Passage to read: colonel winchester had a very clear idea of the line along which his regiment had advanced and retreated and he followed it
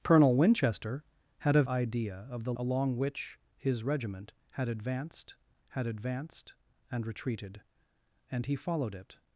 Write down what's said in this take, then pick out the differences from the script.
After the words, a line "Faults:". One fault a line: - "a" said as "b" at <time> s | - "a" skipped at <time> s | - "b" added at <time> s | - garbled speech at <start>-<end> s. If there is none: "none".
colonel winchester had a idea of the along which his regiment had advanced had advanced and retreated and he followed it
Faults:
- "very clear" skipped at 1.6 s
- "line" skipped at 2.5 s
- "had advanced" added at 5.7 s